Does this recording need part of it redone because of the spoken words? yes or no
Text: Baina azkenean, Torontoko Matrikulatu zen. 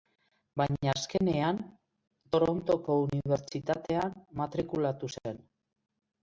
yes